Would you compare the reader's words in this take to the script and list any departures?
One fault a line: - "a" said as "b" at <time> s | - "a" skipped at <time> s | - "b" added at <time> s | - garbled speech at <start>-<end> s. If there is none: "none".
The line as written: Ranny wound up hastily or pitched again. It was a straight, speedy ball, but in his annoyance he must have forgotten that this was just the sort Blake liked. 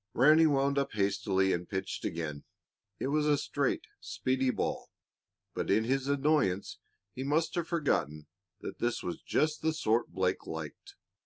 - "or" said as "and" at 1.5 s